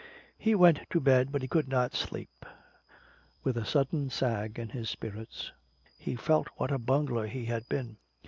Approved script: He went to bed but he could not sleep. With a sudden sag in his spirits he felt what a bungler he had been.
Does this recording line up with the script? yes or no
yes